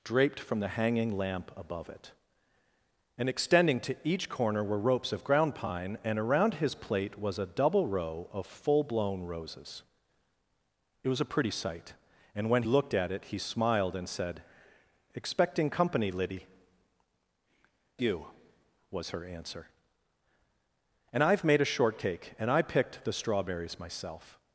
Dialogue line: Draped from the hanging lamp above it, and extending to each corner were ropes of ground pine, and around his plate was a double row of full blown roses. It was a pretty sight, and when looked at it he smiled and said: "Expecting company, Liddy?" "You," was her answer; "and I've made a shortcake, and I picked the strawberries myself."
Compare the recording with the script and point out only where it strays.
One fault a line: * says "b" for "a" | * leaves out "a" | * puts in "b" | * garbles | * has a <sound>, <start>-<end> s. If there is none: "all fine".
all fine